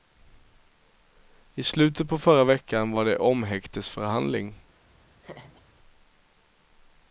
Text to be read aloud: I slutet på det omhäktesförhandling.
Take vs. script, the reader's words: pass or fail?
fail